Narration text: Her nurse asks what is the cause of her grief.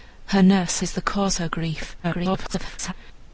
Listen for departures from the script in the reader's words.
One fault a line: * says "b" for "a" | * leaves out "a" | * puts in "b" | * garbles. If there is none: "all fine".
* leaves out "asks what"
* leaves out "of"
* garbles